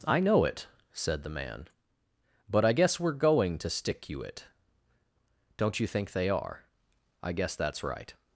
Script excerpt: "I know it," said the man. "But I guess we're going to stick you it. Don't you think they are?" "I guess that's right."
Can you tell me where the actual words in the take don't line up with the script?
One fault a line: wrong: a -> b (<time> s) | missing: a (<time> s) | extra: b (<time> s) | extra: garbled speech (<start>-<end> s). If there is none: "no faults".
no faults